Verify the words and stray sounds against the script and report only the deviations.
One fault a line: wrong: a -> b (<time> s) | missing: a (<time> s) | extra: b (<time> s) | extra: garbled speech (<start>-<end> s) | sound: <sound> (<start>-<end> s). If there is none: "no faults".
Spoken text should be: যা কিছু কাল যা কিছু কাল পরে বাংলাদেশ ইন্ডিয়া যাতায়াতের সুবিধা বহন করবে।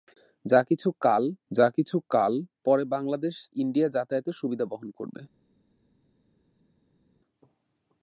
no faults